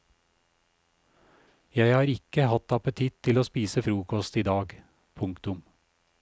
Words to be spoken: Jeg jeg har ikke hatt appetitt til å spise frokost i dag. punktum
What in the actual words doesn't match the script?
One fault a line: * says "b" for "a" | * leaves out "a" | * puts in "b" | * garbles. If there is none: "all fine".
* leaves out "jeg"